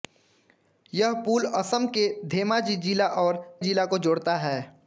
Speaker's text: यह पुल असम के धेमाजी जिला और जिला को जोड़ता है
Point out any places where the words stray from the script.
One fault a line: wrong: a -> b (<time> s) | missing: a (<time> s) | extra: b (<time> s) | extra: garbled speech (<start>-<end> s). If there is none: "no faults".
no faults